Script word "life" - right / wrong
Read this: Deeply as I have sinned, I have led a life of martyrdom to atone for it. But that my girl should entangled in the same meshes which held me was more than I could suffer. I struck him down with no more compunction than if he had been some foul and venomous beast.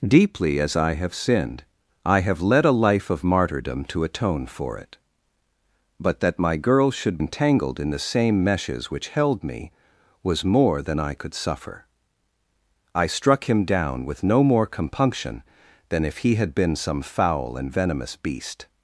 right